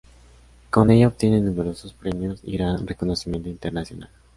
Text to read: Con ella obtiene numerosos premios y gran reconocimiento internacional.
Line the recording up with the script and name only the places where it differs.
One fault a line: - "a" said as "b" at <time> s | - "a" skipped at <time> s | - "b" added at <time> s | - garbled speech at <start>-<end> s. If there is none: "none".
none